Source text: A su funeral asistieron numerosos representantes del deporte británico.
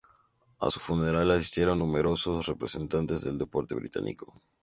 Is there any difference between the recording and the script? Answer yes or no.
no